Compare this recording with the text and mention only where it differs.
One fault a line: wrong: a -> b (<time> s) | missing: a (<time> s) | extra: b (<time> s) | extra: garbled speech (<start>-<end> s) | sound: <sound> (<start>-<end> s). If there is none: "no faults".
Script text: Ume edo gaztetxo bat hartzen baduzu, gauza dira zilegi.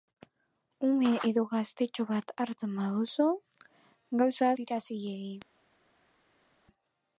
no faults